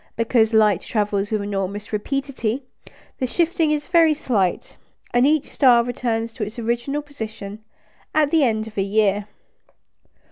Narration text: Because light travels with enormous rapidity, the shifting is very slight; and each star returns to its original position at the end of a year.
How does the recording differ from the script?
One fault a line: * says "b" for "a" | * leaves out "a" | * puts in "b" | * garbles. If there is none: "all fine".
all fine